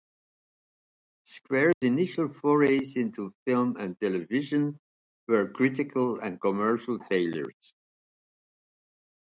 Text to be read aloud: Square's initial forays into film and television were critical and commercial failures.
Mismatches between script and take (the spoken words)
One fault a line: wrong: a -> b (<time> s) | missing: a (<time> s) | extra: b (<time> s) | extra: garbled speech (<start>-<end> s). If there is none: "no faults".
no faults